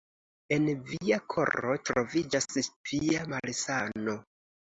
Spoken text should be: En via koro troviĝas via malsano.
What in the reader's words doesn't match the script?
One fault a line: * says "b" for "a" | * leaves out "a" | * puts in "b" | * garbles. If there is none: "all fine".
all fine